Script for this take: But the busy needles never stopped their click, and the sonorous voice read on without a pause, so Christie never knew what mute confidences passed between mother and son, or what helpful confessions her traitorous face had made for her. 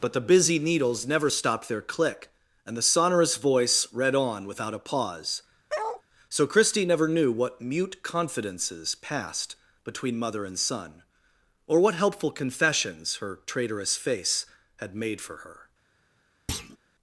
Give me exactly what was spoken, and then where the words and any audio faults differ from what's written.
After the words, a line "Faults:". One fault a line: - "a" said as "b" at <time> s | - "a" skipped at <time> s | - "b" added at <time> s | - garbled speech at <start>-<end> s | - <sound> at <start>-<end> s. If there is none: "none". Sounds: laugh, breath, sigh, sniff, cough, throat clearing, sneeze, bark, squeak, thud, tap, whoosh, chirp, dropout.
But the busy needles never stopped their click, and the sonorous voice read on without a pause, so Christie never knew what mute confidences passed between mother and son, or what helpful confessions her traitorous face had made for her.
Faults:
- bark at 5.7-6.0 s
- thud at 16.5-16.8 s